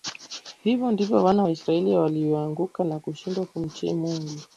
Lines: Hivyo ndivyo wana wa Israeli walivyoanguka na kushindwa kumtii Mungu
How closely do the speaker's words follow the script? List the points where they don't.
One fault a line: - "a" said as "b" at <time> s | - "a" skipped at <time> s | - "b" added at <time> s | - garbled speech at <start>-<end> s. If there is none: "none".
none